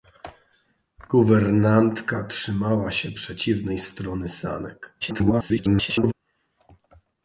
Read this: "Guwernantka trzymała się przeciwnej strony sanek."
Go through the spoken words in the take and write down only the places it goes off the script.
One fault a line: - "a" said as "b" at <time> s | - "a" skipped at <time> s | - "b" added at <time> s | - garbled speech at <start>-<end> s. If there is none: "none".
- garbled speech at 5.0-6.1 s